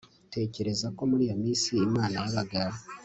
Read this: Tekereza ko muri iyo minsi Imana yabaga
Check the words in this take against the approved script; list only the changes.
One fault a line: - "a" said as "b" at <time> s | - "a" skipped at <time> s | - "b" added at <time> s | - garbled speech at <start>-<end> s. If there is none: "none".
none